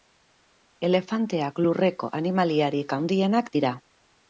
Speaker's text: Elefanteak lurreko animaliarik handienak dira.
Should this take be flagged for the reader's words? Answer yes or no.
no